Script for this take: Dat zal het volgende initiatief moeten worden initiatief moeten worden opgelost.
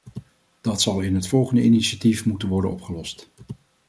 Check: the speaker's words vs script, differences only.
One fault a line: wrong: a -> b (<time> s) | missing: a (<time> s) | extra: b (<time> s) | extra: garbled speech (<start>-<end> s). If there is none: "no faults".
extra: in (1.0 s)
missing: initiatief moeten worden (2.7 s)